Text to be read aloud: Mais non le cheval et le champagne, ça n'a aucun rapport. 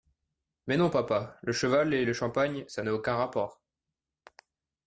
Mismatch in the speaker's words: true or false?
true